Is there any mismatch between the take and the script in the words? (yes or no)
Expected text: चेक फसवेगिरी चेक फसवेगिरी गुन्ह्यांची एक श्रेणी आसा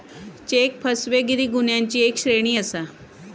yes